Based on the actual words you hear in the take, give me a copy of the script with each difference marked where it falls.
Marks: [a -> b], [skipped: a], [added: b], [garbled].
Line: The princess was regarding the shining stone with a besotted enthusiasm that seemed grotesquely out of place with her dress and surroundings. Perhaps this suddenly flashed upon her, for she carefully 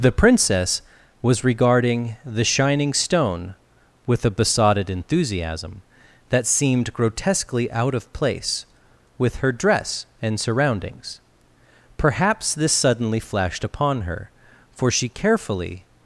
The princess was regarding the shining stone with a besotted enthusiasm that seemed grotesquely out of place with her dress and surroundings. Perhaps this suddenly flashed upon her, for she carefully